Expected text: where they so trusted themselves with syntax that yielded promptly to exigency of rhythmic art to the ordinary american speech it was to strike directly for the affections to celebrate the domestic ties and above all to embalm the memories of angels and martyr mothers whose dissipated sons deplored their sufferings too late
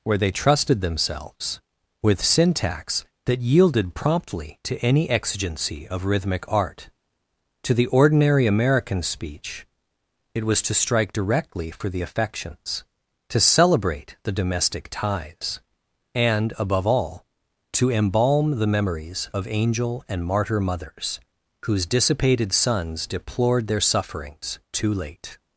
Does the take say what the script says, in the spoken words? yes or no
no